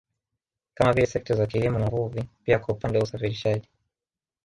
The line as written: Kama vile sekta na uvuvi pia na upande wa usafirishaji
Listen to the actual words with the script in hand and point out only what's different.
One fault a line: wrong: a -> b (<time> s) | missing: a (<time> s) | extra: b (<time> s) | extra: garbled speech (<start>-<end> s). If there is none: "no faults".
extra: za kilimo (1.4 s)
wrong: na -> kwa (2.6 s)